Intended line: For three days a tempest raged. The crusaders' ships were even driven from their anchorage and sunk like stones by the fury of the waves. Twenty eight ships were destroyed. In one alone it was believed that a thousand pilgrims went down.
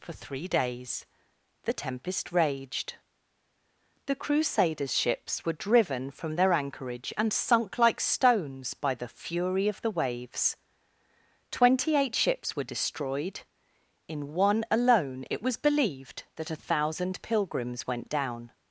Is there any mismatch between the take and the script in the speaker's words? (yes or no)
yes